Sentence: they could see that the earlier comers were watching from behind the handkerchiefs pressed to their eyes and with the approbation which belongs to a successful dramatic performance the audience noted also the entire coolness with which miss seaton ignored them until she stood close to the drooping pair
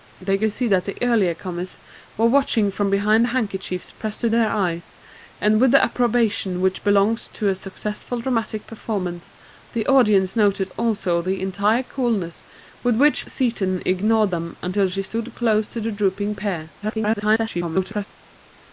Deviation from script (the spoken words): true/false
true